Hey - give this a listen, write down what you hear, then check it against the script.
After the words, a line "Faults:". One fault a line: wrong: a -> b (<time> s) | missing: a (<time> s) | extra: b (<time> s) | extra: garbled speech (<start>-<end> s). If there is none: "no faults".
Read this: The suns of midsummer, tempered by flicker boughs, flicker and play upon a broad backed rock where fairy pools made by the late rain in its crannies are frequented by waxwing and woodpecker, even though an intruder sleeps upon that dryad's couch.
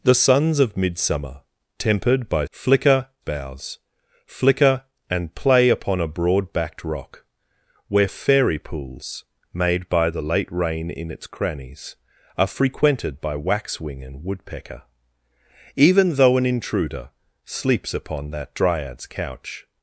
The suns of midsummer, tempered by flicker boughs, flicker and play upon a broad backed rock where fairy pools made by the late rain in its crannies are frequented by waxwing and woodpecker, even though an intruder sleeps upon that dryad's couch.
Faults:
no faults